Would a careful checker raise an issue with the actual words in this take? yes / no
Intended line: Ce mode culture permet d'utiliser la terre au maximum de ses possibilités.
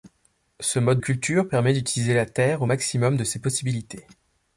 no